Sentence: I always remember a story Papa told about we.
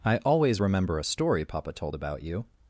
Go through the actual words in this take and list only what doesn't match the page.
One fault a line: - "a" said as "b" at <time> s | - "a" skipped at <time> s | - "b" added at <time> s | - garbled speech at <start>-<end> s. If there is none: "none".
- "we" said as "you" at 2.2 s